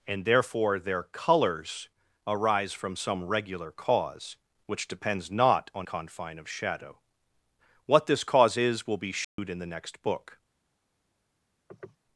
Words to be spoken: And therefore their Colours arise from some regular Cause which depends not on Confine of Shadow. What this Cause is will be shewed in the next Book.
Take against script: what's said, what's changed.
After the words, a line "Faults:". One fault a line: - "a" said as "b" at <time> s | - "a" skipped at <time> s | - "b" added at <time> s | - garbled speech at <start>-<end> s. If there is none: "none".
And therefore their Colours arise from some regular Cause which depends not on Confine of Shadow. What this Cause is will be shewed in the next Book.
Faults:
none